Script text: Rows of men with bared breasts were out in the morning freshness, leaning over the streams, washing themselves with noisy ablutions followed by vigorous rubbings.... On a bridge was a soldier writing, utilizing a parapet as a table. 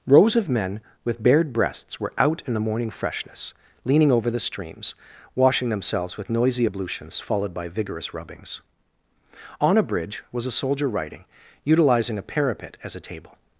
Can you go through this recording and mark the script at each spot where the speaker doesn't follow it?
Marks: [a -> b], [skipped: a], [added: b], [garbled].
Rows of men with bared breasts were out in the morning freshness, leaning over the streams, washing themselves with noisy ablutions followed by vigorous rubbings.... On a bridge was a soldier writing, utilizing a parapet as a table.